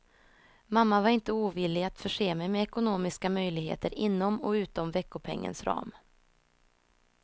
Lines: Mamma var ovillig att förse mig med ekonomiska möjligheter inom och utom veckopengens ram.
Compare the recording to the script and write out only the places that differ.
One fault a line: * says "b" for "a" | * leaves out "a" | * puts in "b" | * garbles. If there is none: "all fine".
* puts in "inte"